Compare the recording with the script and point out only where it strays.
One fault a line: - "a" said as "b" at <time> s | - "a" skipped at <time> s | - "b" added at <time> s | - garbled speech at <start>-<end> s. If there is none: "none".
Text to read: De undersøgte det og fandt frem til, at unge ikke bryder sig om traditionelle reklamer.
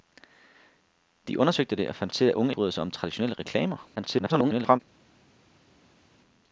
- "frem" skipped at 2.1 s
- "ikke" skipped at 2.5 s
- garbled speech at 4.0-4.8 s